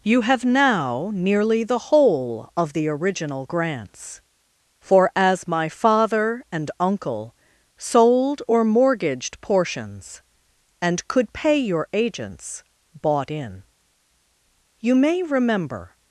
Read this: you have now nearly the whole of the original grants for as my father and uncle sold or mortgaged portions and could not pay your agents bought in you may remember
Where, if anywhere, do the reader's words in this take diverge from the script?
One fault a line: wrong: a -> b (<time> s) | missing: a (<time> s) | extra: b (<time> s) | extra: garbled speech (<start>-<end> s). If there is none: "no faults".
missing: not (11.3 s)